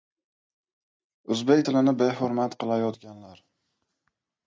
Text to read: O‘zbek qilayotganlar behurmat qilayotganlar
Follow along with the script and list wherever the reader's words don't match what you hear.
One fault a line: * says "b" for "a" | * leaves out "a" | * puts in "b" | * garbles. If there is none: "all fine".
* says "tilini" for "qilayotganlar"